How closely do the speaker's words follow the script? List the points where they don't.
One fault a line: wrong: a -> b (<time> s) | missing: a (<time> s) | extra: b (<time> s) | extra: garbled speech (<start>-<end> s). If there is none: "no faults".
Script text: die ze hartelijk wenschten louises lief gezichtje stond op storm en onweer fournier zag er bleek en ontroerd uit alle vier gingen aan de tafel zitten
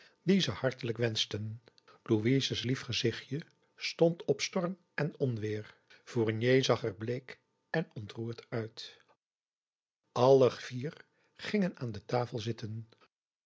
no faults